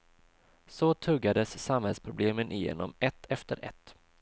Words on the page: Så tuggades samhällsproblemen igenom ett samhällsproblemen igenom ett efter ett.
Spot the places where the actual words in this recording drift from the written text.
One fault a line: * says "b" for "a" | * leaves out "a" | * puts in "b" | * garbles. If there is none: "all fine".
* leaves out "samhällsproblemen igenom ett"